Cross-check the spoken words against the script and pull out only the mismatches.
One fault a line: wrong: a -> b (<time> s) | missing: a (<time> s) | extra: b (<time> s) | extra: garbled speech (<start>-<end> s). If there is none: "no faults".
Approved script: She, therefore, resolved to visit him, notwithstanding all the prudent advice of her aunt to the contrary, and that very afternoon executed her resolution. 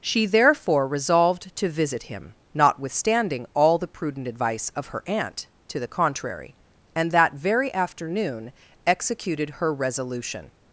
no faults